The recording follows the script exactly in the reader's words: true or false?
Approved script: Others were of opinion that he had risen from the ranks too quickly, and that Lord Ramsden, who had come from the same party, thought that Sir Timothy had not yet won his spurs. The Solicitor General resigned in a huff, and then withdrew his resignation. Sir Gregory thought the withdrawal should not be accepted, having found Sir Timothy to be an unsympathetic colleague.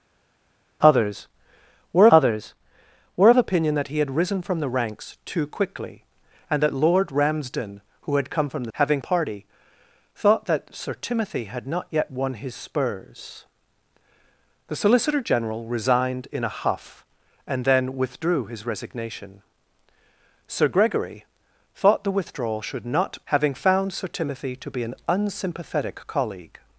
false